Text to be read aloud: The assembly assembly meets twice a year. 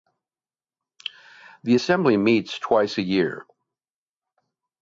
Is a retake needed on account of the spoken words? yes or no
yes